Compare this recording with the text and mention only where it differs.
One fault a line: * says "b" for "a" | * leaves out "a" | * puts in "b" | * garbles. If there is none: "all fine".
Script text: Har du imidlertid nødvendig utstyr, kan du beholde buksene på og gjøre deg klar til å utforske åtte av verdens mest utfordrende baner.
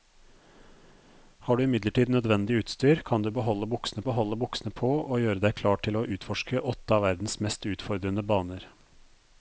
* puts in "beholde buksene"